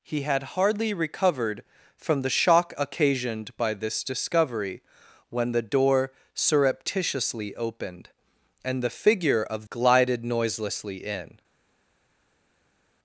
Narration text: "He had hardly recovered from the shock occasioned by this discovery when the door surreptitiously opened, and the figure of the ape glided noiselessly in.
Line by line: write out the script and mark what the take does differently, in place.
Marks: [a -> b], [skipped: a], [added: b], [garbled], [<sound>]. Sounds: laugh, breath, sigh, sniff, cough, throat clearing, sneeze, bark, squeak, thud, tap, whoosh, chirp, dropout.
"He had hardly recovered from the shock occasioned by this discovery when the door surreptitiously opened, and the figure of [skipped: the ape] glided noiselessly in.